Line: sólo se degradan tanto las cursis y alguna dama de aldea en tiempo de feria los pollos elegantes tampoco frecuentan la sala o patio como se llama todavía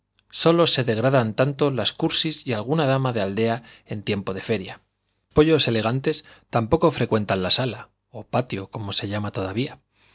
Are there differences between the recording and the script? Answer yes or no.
yes